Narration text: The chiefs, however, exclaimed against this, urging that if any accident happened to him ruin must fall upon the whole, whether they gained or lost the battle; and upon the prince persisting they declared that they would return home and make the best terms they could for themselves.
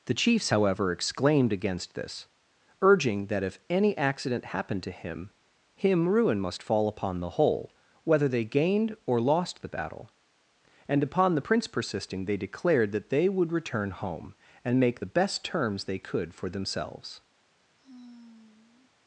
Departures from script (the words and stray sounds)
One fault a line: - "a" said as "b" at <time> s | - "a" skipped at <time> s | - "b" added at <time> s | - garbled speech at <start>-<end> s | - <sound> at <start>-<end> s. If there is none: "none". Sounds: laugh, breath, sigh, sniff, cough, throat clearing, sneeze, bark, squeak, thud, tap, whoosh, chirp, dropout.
- "him" added at 5.7 s
- sigh at 17.8-18.9 s